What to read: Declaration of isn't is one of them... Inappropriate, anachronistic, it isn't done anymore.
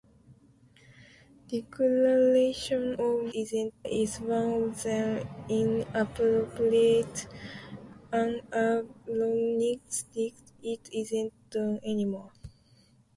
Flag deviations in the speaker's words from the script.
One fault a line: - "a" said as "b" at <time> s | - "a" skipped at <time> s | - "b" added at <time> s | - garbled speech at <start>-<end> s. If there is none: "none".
none